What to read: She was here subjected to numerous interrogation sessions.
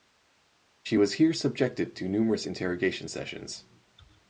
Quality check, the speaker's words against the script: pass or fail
pass